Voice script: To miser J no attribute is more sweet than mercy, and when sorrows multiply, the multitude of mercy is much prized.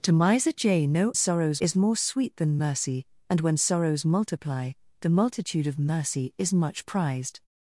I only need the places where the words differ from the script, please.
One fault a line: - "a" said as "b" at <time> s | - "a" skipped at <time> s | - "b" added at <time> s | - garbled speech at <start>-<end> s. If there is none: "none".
- "attribute" said as "sorrows" at 1.1 s